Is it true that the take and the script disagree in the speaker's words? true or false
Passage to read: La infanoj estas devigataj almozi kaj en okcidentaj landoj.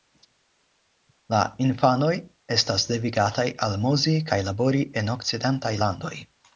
true